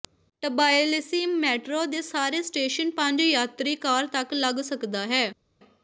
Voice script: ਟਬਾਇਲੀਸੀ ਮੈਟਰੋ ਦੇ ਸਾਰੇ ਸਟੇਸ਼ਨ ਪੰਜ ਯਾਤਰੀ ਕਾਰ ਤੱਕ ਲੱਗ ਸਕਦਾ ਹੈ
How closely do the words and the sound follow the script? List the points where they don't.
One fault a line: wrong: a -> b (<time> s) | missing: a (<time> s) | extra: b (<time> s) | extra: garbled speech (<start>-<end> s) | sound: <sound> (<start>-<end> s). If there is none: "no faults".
no faults